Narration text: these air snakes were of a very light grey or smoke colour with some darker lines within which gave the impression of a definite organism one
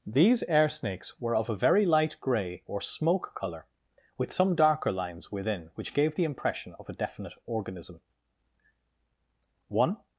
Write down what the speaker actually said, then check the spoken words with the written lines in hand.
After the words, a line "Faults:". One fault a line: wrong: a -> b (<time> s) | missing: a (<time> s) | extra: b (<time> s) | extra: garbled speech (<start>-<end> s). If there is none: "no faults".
these air snakes were of a very light grey or smoke colour with some darker lines within which gave the impression of a definite organism one
Faults:
no faults